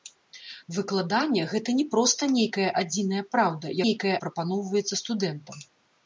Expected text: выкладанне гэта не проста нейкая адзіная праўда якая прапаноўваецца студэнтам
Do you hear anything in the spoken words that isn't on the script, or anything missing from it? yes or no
yes